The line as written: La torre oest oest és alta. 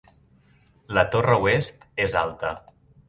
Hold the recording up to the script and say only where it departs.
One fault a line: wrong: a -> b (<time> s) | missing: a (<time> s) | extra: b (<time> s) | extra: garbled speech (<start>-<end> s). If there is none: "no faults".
missing: oest (1.9 s)